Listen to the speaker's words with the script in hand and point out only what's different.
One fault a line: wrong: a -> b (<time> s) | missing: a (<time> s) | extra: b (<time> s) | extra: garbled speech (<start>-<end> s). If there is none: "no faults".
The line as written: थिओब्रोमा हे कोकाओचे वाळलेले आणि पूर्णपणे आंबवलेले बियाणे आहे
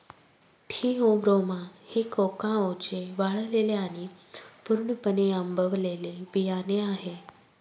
no faults